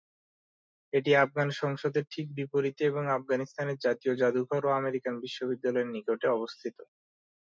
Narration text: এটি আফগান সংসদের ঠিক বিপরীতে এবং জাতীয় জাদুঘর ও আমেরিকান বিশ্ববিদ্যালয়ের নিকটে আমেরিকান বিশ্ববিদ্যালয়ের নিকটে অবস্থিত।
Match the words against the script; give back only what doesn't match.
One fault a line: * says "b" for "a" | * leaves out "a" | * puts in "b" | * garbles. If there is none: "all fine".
* puts in "আফগানিস্তানের"
* leaves out "আমেরিকান বিশ্ববিদ্যালয়ের নিকটে"